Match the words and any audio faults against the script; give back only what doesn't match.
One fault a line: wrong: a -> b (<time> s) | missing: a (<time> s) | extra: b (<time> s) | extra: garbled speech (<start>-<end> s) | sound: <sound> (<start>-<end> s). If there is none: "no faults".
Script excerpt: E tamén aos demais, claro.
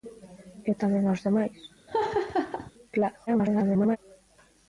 sound: laugh (1.9-2.7 s)
extra: garbled speech (3.3-4.0 s)